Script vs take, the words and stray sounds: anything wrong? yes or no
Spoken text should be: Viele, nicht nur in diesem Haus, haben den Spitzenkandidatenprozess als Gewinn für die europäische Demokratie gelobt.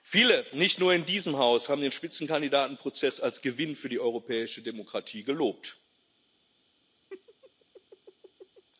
yes